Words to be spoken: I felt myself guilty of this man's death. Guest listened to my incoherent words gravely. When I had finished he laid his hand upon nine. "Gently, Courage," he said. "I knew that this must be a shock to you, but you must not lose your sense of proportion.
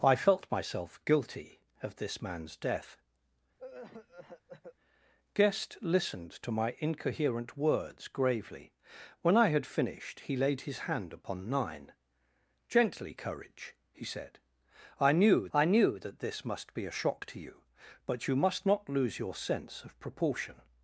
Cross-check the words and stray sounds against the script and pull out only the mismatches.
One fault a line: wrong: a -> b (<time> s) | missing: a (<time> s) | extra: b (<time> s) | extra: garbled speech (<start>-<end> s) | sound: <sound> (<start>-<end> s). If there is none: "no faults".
sound: cough (3.6-4.8 s)
extra: I knew (15.5 s)